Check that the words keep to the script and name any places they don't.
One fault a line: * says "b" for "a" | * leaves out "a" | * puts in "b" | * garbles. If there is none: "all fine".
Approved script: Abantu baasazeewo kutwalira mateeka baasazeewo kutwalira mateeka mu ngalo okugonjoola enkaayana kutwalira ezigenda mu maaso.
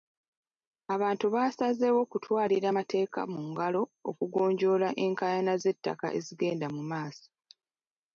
* leaves out "baasazeewo kutwalira mateeka"
* says "z'ettaka" for "kutwalira"